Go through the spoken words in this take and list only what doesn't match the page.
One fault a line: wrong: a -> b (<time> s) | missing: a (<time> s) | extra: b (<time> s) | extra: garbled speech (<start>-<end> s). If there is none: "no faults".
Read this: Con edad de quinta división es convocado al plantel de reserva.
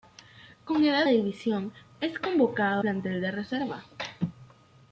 missing: de quinta (1.1 s)
missing: al (2.8 s)